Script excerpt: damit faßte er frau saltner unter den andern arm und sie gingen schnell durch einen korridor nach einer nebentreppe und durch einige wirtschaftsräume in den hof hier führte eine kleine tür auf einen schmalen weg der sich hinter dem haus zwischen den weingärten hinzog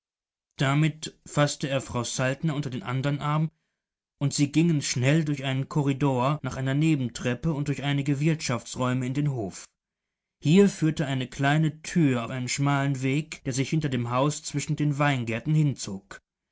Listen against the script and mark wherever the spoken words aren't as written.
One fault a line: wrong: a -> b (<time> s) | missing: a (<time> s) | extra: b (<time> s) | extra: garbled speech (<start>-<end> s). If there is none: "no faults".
missing: auf (12.2 s)